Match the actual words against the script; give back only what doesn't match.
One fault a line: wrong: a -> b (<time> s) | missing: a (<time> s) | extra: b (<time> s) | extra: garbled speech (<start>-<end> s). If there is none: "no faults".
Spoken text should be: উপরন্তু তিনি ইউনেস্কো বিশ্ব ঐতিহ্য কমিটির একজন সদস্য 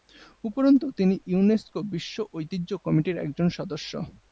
no faults